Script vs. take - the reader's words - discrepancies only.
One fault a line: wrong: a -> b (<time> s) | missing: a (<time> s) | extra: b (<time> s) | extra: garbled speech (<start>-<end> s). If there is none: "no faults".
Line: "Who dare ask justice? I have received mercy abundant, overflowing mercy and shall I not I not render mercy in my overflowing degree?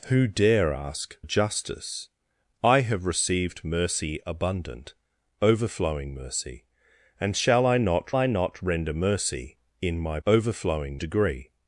no faults